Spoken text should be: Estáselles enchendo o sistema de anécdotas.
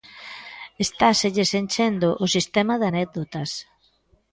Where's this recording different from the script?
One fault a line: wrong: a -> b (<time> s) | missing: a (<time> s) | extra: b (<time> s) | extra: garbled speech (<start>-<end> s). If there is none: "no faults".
no faults